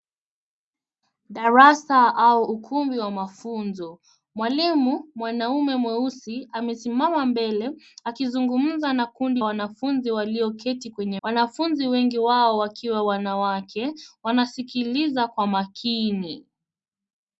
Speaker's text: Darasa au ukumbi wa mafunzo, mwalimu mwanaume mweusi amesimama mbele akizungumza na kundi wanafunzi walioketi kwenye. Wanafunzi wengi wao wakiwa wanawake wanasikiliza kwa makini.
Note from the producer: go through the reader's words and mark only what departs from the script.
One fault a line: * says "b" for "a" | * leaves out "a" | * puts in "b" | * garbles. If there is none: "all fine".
all fine